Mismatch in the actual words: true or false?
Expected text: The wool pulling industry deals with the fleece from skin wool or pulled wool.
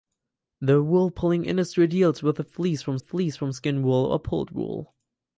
true